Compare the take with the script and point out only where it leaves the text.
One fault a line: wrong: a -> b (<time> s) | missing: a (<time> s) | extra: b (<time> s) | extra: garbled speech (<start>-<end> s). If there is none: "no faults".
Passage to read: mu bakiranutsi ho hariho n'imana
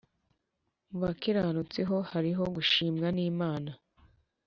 extra: gushimwa (2.5 s)